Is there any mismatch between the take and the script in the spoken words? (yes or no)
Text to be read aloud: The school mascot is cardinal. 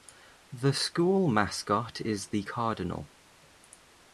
yes